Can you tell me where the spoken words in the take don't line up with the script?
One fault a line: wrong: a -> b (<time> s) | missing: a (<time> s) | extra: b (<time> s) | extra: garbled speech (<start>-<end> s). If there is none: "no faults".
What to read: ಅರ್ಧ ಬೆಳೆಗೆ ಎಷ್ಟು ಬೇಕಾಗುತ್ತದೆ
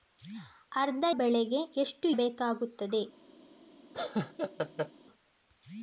no faults